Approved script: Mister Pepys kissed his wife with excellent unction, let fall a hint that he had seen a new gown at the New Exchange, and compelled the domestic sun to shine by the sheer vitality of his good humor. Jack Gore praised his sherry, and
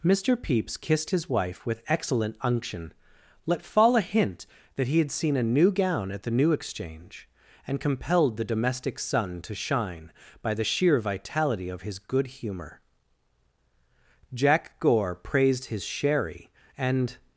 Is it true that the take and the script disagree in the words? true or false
false